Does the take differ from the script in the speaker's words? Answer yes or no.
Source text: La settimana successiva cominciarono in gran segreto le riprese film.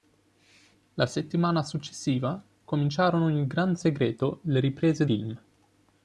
no